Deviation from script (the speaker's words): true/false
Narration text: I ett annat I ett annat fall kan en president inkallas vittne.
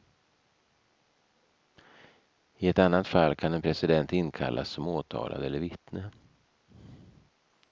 true